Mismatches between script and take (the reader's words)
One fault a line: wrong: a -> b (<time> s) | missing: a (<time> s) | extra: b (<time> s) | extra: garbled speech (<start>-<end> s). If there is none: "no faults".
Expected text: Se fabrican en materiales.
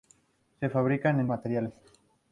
no faults